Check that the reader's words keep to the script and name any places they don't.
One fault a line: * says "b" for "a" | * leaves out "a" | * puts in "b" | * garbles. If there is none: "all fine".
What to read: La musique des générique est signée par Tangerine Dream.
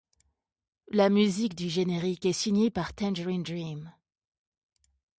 * says "du" for "des"